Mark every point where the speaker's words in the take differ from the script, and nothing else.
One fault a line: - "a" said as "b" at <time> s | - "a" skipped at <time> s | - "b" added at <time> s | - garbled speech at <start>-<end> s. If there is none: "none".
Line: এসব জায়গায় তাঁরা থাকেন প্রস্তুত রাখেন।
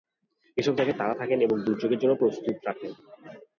- "এবং দুর্যোগের জন্য" added at 1.4 s